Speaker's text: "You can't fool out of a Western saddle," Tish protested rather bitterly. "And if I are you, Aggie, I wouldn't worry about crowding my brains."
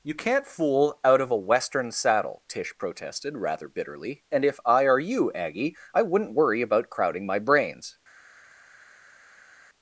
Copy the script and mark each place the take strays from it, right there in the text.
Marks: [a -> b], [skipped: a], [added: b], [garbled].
"You can't fool out of a Western saddle," Tish protested rather bitterly. "And if I are you, Aggie, I wouldn't worry about crowding my brains."